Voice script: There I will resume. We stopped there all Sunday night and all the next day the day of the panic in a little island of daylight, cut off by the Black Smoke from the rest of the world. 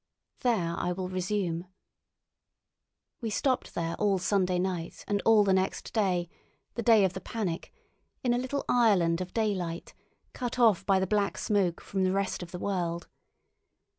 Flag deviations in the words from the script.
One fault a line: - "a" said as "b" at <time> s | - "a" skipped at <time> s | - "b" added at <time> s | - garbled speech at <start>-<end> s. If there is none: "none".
none